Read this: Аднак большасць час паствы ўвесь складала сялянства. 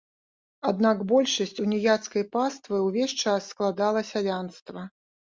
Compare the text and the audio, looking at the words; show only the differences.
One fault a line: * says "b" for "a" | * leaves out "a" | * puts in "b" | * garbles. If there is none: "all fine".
* says "уніяцкай" for "час"
* puts in "час"